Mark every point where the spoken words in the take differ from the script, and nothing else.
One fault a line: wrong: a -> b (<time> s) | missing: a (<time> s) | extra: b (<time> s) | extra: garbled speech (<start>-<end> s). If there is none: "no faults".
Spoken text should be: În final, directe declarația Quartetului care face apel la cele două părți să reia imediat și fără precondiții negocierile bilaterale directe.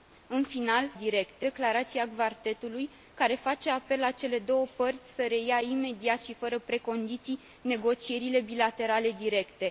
no faults